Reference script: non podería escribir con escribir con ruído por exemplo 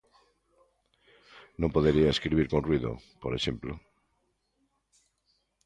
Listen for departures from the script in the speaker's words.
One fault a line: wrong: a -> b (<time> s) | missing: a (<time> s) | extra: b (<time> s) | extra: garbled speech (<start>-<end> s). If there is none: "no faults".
missing: escribir con (2.6 s)